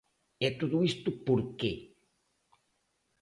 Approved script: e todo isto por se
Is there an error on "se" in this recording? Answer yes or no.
yes